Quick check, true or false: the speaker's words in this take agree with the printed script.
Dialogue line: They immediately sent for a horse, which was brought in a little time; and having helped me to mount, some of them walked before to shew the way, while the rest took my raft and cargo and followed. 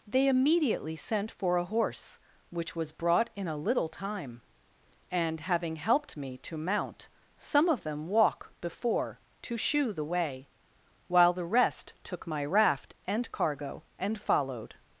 false